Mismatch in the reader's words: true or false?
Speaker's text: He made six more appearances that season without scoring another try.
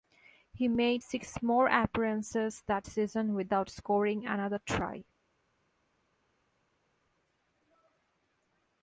false